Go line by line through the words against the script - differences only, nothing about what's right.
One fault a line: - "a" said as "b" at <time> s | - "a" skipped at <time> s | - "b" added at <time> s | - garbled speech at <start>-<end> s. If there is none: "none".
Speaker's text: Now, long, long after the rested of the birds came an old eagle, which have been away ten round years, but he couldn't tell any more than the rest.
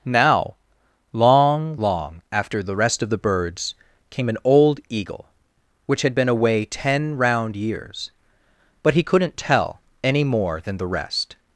- "rested" said as "rest" at 2.7 s
- "have" said as "had" at 6.0 s